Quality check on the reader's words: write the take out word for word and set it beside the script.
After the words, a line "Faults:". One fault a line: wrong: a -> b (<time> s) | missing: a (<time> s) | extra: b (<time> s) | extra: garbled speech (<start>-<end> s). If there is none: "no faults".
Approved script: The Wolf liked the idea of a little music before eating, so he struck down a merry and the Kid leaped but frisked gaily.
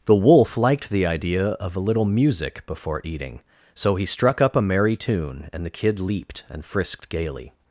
The Wolf liked the idea of a little music before eating, so he struck up a merry tune and the Kid leaped and frisked gaily.
Faults:
wrong: down -> up (4.4 s)
extra: tune (5.0 s)
wrong: but -> and (6.5 s)